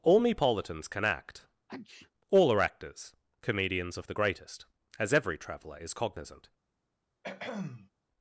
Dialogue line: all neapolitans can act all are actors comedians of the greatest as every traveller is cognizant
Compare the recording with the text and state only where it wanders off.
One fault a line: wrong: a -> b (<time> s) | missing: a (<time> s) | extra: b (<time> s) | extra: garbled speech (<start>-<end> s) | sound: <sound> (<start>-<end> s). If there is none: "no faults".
sound: sneeze (1.7-2.1 s)
sound: throat clearing (7.2-7.9 s)